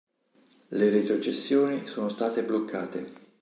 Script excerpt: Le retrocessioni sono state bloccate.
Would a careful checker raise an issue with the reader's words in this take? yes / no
no